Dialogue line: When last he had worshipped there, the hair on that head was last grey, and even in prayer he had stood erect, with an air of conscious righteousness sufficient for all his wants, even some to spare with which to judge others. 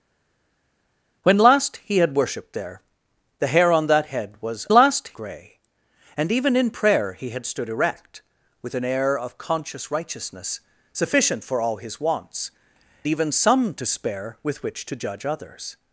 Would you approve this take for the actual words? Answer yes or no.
yes